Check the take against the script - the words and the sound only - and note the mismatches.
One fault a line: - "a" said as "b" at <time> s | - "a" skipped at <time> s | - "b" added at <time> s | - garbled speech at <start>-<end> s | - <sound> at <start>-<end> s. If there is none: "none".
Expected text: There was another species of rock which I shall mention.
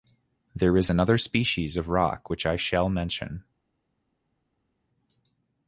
- "was" said as "is" at 0.8 s